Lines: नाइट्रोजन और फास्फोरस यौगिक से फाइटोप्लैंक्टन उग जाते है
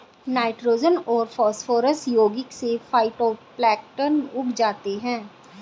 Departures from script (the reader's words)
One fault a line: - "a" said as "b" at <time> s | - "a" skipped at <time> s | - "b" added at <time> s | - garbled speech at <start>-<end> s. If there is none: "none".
none